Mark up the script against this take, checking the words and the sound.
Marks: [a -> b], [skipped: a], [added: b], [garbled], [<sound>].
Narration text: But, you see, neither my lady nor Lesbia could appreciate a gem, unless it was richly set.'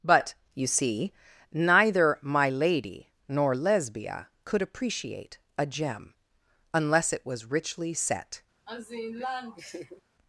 But, you see, neither my lady nor Lesbia could appreciate a gem, unless it was richly set.' [laugh]